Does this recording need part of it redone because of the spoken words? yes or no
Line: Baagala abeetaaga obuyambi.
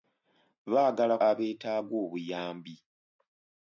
no